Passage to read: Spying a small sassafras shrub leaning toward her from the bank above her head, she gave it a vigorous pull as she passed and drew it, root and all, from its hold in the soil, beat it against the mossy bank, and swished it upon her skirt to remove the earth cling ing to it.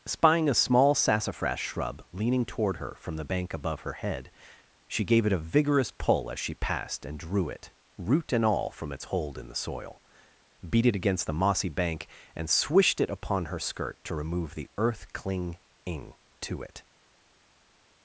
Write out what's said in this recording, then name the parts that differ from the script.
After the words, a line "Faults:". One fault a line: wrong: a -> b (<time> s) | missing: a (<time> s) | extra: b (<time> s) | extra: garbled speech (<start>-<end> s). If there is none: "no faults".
Spying a small sassafras shrub leaning toward her from the bank above her head, she gave it a vigorous pull as she passed and drew it, root and all, from its hold in the soil, beat it against the mossy bank, and swished it upon her skirt to remove the earth cling ing to it.
Faults:
no faults